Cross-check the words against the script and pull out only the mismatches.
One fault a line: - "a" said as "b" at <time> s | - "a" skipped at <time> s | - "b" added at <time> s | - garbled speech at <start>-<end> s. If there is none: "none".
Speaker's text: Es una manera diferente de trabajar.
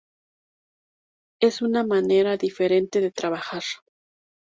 none